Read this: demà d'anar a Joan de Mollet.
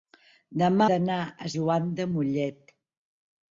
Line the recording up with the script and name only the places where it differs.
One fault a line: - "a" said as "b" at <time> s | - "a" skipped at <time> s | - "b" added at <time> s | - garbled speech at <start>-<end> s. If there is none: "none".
none